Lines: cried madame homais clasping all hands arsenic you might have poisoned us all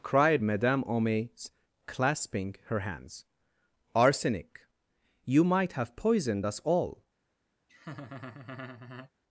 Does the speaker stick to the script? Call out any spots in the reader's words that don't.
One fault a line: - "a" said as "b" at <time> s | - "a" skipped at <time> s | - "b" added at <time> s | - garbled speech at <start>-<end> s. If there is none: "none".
- "all" said as "her" at 2.7 s